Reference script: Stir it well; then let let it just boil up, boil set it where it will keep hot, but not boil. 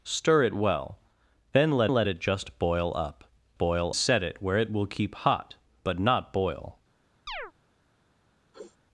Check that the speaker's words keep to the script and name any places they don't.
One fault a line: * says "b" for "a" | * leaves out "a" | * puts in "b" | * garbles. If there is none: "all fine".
all fine